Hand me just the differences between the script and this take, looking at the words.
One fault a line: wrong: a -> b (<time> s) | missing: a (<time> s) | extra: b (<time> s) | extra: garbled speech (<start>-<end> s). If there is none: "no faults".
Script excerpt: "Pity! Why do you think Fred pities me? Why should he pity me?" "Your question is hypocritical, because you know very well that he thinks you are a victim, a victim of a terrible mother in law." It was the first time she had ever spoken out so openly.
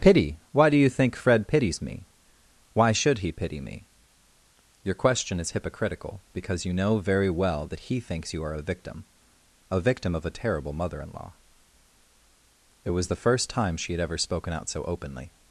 no faults